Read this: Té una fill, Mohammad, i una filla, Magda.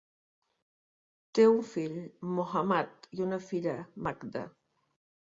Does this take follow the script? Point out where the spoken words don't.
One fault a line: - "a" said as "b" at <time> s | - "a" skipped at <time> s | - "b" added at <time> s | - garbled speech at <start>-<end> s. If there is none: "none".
- "una" said as "un" at 1.5 s